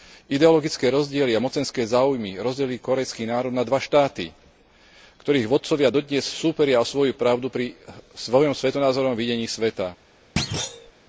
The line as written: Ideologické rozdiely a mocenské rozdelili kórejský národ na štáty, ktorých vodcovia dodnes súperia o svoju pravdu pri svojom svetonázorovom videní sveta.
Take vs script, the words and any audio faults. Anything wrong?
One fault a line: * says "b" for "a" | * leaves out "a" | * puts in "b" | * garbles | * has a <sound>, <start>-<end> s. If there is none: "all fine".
* puts in "záujmy"
* puts in "dva"
* has a thud, 10.4-10.9 s